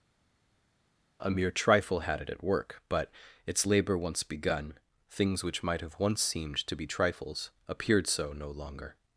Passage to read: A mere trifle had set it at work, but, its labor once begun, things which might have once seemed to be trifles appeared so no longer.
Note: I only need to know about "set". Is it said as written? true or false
false